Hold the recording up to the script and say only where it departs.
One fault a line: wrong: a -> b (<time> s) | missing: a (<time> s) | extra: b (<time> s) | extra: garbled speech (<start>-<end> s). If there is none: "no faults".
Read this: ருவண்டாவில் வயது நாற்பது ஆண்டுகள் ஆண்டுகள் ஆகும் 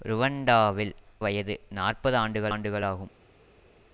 no faults